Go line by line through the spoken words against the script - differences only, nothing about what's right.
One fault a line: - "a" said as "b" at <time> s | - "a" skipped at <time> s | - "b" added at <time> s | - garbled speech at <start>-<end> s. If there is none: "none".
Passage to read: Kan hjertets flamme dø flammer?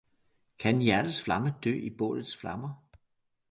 - "i bålets" added at 1.7 s